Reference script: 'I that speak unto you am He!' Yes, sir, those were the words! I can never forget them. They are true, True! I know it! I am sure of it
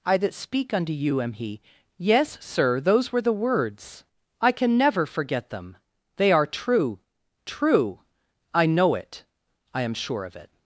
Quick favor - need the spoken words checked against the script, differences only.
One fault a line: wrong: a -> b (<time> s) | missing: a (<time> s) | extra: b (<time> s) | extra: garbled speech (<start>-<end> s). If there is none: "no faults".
no faults